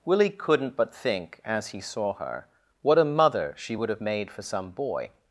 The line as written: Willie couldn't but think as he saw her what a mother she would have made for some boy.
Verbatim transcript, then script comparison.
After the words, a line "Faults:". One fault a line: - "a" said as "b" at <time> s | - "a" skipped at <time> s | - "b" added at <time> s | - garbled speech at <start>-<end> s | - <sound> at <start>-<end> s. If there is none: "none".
Willie couldn't but think as he saw her what a mother she would have made for some boy.
Faults:
none